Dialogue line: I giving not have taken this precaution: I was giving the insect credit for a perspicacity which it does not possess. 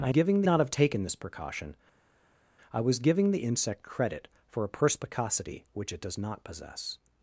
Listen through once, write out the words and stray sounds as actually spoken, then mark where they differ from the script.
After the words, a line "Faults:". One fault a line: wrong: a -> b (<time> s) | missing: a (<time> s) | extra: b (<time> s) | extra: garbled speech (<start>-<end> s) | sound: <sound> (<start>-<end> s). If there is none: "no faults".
I giving not have taken this precaution: I was giving the insect credit for a perspicacity which it does not possess.
Faults:
no faults